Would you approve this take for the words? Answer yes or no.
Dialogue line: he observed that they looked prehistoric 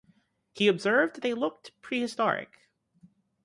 no